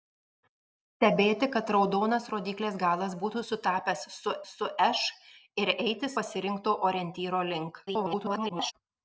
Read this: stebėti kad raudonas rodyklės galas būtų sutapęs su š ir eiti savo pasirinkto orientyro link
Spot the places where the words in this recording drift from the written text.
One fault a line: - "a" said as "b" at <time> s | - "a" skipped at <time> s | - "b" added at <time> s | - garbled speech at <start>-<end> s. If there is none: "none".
- "su" added at 4.5 s
- "savo" skipped at 6.1 s
- garbled speech at 7.9-8.7 s